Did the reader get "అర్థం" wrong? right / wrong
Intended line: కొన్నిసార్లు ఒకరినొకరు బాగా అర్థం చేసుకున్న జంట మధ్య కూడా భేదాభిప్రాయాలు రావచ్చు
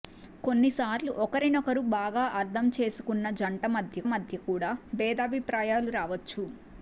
right